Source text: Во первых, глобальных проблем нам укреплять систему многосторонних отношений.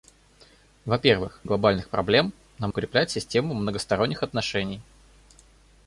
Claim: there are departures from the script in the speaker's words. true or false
false